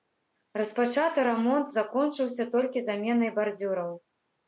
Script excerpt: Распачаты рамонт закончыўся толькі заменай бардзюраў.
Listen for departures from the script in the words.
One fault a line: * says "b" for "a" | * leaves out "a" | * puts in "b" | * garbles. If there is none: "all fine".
all fine